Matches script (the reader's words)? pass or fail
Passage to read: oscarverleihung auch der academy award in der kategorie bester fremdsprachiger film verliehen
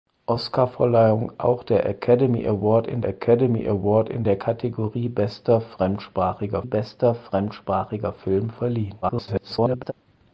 fail